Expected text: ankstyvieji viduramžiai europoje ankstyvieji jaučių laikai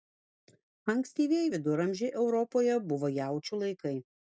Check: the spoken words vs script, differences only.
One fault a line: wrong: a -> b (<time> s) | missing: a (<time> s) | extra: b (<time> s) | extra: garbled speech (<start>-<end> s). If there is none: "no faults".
wrong: ankstyvieji -> buvo (2.9 s)